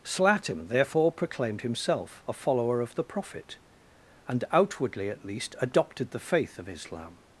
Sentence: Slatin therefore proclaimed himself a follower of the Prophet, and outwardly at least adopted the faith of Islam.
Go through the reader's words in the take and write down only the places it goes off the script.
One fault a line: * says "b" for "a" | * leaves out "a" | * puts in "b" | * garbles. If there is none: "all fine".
all fine